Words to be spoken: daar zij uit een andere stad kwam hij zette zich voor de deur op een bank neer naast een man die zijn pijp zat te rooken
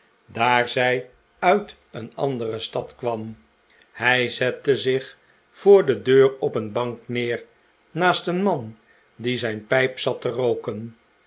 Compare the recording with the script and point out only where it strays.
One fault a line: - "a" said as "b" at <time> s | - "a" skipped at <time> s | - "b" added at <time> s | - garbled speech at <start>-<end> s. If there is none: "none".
none